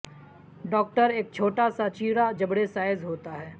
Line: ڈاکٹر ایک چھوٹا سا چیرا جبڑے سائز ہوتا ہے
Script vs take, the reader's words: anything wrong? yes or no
no